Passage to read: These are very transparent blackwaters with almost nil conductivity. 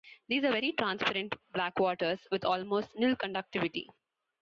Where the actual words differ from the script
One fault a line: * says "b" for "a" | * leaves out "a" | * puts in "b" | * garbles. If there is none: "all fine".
all fine